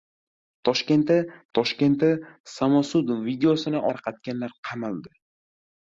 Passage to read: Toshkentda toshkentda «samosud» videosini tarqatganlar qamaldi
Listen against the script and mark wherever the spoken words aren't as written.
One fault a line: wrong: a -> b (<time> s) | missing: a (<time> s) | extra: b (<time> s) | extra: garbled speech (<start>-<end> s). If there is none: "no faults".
no faults